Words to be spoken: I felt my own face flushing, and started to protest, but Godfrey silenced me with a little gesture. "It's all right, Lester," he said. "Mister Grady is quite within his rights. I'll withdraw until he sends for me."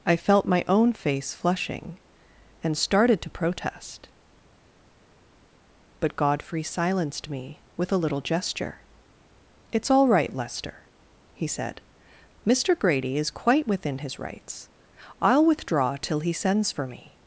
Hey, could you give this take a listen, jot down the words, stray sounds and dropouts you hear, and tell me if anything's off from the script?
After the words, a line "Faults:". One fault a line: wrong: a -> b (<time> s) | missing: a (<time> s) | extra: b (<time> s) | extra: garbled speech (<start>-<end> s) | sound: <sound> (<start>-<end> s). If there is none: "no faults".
I felt my own face flushing, and started to protest, but Godfrey silenced me with a little gesture. "It's all right, Lester," he said. "Mister Grady is quite within his rights. I'll withdraw till he sends for me."
Faults:
wrong: until -> till (16.0 s)